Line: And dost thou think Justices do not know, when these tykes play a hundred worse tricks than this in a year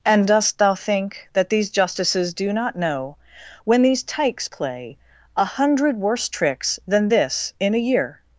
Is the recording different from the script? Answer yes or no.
yes